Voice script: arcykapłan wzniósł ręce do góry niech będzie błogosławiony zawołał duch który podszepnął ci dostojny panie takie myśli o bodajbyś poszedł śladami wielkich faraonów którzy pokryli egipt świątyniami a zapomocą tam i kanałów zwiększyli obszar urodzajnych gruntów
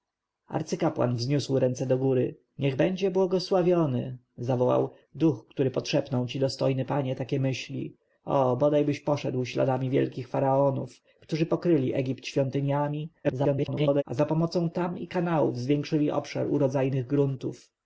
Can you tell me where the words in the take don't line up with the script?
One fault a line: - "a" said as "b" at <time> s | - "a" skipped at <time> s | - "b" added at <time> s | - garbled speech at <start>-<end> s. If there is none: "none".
- garbled speech at 13.2-14.0 s